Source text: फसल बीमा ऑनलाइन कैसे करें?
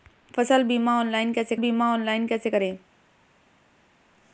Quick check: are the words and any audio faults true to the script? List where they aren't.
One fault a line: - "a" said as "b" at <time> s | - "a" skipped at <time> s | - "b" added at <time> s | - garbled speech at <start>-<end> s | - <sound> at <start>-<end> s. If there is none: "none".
- "बीमा ऑनलाइन कैसे" added at 1.6 s